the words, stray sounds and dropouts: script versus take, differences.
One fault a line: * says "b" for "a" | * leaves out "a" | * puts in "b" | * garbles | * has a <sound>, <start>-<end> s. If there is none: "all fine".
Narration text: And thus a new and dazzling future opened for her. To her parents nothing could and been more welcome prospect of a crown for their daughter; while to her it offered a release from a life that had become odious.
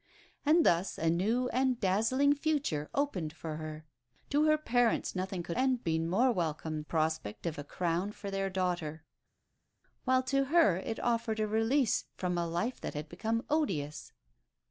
all fine